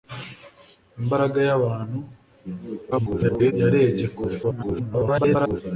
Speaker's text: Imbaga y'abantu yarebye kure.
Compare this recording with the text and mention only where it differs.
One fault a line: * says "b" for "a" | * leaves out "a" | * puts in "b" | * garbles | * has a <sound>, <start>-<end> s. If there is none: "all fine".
* garbles
* garbles